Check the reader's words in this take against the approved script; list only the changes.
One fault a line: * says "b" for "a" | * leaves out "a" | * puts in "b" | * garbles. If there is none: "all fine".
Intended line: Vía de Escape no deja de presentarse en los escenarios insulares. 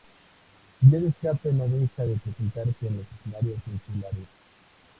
all fine